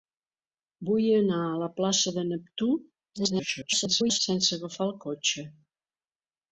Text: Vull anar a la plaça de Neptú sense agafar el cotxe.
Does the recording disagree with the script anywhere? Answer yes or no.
yes